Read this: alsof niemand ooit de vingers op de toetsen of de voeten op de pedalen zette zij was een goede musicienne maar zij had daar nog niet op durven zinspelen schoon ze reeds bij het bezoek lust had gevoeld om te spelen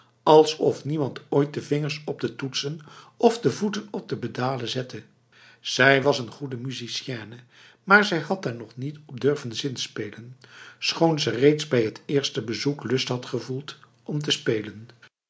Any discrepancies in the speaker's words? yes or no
yes